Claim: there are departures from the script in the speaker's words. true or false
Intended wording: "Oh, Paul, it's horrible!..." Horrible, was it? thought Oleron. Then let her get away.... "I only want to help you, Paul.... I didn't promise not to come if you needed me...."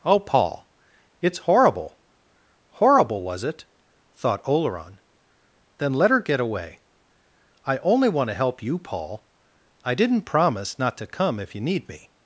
true